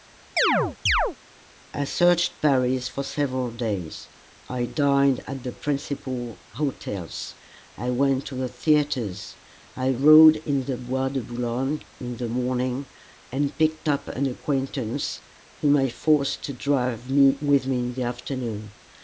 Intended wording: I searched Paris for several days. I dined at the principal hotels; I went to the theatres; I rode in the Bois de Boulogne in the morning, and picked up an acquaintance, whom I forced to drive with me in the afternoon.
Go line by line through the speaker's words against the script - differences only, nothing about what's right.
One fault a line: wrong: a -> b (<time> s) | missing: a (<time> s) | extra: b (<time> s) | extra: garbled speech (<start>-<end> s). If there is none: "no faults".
no faults